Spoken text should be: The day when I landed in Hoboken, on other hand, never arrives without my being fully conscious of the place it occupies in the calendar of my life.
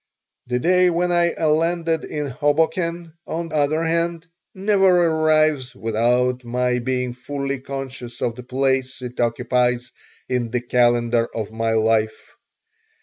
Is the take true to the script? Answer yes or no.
yes